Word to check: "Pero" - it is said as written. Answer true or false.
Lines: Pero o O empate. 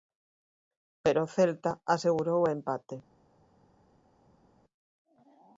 true